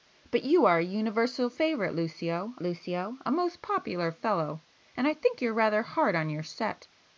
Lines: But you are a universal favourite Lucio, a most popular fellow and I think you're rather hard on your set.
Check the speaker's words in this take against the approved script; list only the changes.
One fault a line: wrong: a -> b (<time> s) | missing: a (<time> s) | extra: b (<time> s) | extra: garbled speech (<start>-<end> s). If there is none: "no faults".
extra: Lucio (2.6 s)